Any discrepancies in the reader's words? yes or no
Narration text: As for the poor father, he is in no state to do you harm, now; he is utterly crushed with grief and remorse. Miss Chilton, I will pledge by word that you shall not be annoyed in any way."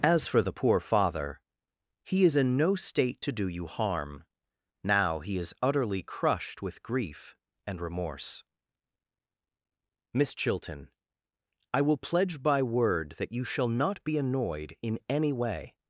no